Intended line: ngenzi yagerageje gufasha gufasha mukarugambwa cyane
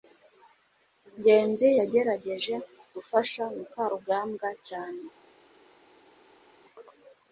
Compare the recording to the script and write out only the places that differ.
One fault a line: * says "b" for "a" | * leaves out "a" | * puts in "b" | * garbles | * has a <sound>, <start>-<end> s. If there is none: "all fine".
* leaves out "gufasha"